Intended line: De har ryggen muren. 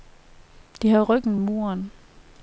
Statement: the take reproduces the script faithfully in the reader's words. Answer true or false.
true